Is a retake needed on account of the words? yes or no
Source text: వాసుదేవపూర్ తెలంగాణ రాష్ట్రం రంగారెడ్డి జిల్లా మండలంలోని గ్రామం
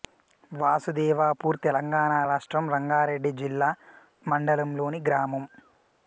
no